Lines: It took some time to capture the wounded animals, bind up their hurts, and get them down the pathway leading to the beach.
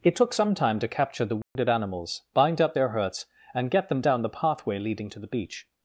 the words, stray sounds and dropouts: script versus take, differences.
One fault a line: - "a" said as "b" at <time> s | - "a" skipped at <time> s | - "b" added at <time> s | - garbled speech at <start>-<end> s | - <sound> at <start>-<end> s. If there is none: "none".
- dropout at 1.4-1.6 s